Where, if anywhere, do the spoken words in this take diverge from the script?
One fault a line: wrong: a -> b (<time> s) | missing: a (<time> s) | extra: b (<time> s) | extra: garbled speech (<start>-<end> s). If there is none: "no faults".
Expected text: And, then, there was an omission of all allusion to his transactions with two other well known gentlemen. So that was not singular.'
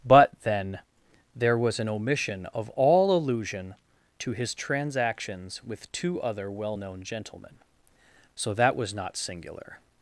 wrong: And -> But (0.1 s)